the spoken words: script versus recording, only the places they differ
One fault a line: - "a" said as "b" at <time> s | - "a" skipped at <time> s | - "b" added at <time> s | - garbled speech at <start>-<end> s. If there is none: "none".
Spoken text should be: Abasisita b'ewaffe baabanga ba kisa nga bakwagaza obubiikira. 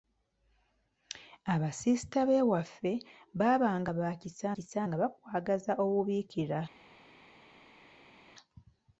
- "kisa" added at 4.5 s